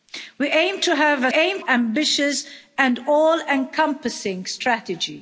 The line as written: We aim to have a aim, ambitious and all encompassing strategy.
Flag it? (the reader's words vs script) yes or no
no